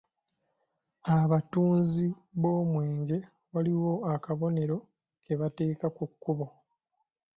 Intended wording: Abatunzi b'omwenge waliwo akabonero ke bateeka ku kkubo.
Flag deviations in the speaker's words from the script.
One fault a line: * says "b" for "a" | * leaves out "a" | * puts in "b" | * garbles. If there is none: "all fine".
all fine